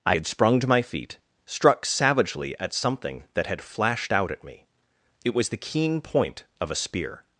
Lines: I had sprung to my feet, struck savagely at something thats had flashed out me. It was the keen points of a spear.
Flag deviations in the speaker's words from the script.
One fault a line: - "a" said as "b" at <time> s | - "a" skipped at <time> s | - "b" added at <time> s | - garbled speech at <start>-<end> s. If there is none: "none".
- "thats" said as "that" at 3.3 s
- "at" added at 4.3 s
- "points" said as "point" at 6.0 s